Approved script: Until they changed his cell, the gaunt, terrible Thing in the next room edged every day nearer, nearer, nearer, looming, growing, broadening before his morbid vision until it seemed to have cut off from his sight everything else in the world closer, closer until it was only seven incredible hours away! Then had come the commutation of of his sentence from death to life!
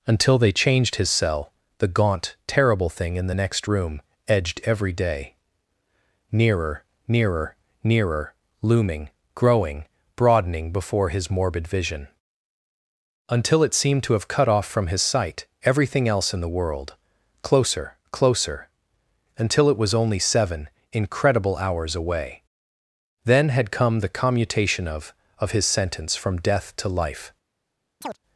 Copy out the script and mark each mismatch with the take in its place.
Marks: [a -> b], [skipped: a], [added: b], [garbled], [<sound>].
Until they changed his cell, the gaunt, terrible Thing in the next room edged every day nearer, nearer, nearer, looming, growing, broadening before his morbid vision until it seemed to have cut off from his sight everything else in the world closer, closer until it was only seven incredible hours away! Then had come the commutation of of his sentence from death to life! [chirp]